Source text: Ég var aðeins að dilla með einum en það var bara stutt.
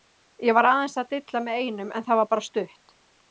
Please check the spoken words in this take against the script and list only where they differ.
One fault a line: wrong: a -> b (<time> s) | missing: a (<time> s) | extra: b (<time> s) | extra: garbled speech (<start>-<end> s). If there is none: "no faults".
no faults